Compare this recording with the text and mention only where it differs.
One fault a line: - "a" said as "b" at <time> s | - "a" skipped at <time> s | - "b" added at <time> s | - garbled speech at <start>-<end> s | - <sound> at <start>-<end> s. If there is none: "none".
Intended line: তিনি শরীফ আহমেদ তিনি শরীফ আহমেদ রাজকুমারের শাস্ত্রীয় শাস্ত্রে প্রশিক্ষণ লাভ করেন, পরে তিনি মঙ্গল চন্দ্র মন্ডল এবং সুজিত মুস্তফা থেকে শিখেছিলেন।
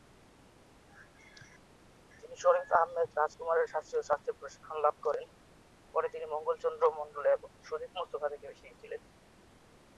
- "তিনি শরীফ আহমেদ" skipped at 3.1 s